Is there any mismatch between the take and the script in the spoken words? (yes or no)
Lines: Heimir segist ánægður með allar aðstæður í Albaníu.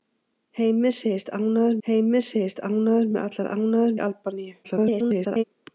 yes